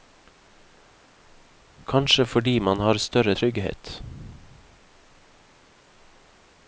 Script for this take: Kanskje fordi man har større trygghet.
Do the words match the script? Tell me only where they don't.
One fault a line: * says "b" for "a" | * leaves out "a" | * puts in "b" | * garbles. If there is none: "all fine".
all fine